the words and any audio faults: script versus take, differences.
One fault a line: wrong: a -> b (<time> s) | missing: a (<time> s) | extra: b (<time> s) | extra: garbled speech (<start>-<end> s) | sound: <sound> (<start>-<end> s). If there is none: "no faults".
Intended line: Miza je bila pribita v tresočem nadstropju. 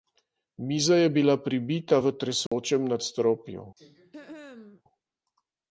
sound: dropout (2.5-2.5 s)
sound: throat clearing (3.8-4.8 s)